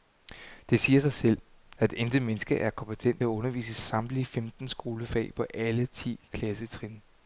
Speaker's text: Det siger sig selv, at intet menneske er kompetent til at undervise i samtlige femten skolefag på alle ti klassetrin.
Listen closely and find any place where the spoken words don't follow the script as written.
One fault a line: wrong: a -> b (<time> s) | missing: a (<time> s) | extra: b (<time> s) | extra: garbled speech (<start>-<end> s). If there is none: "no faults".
missing: til (3.2 s)